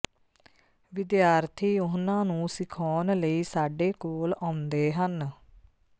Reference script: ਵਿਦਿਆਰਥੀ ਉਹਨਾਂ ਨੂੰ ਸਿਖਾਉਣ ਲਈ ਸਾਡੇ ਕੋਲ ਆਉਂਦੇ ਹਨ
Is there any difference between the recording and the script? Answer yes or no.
no